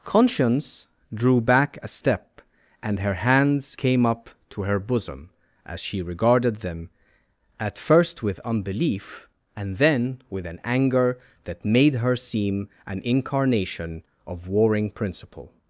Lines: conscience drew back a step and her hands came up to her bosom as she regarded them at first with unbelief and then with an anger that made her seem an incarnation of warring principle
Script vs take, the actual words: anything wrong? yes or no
no